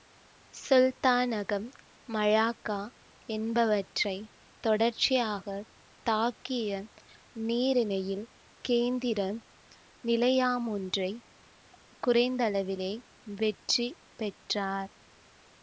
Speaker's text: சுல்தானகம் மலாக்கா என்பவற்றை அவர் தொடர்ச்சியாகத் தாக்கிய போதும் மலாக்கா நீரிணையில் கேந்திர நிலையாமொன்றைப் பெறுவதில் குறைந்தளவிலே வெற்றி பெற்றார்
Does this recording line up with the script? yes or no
no